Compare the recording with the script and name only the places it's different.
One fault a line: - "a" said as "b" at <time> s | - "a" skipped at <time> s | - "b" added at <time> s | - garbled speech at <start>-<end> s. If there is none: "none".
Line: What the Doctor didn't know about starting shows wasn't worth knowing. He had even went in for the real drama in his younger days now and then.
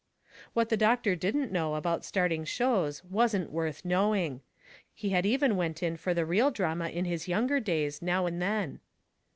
none